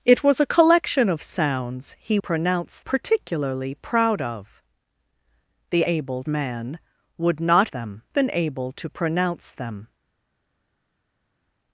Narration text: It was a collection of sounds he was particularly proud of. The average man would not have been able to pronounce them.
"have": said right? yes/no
no